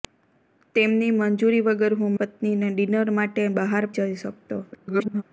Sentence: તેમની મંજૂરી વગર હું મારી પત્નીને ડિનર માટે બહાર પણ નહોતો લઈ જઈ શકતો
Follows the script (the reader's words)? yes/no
no